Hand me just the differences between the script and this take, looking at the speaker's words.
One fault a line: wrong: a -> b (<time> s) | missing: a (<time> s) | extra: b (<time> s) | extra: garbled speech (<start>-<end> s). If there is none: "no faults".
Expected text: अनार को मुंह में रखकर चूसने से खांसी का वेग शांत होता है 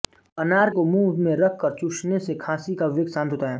no faults